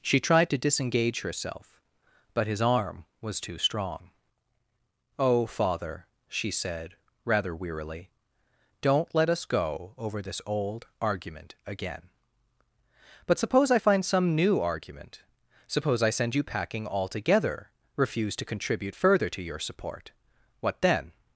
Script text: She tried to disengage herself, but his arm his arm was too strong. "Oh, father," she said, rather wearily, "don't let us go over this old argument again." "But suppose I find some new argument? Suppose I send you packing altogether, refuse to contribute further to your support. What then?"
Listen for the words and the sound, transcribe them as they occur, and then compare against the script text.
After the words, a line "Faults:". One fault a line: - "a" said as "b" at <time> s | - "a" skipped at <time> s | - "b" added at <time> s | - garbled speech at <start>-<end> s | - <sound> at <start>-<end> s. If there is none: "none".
She tried to disengage herself, but his arm was too strong. "Oh, father," she said, rather wearily, "don't let us go over this old argument again." "But suppose I find some new argument? Suppose I send you packing altogether, refuse to contribute further to your support. What then?"
Faults:
- "his arm" skipped at 3.0 s